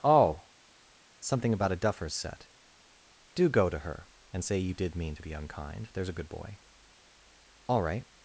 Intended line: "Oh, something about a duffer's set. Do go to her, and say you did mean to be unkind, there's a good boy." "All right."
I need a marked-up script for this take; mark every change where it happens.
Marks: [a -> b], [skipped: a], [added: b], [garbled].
"Oh, something about a duffer's set. Do go to her, and say you did mean to be unkind, there's a good boy." "All right."